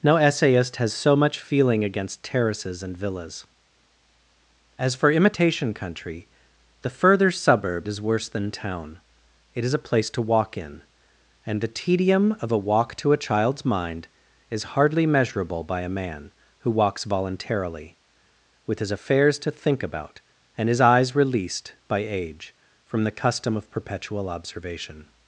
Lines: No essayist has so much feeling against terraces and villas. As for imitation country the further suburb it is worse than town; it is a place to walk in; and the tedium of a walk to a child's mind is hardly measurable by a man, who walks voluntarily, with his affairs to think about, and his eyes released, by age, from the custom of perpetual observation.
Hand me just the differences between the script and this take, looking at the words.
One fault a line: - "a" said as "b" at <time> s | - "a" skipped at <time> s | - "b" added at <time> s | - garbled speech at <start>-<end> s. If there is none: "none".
- "it" skipped at 7.9 s